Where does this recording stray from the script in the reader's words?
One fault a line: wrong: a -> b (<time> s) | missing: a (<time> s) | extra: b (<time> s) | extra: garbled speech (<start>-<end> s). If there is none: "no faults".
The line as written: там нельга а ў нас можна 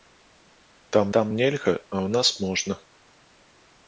extra: там (1.2 s)